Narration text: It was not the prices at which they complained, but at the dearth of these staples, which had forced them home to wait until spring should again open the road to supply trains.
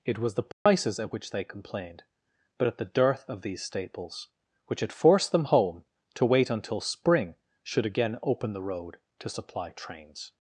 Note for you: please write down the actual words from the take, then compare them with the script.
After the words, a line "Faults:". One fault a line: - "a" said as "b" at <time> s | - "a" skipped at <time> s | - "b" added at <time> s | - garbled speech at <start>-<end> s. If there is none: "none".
It was the prices at which they complained, but at the dearth of these staples, which had forced them home to wait until spring should again open the road to supply trains.
Faults:
- "not" skipped at 0.3 s